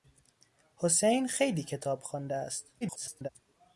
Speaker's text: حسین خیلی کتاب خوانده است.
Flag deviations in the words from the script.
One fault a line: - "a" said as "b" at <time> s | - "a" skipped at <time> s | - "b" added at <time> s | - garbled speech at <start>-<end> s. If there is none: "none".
- garbled speech at 2.8-3.3 s